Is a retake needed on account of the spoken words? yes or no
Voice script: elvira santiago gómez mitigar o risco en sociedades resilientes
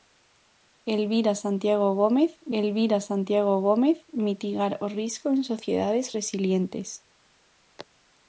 yes